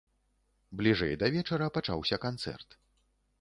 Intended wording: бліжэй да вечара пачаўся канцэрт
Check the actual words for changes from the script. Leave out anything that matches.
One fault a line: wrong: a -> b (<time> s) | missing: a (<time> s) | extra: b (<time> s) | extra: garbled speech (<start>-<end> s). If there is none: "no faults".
no faults